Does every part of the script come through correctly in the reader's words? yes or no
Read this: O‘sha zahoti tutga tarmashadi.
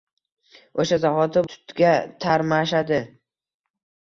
yes